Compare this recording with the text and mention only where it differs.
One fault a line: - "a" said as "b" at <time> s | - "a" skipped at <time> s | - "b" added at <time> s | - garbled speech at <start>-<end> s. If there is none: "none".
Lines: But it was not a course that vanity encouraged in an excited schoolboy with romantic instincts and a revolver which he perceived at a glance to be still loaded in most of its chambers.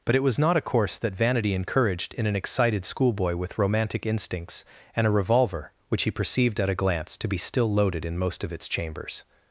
none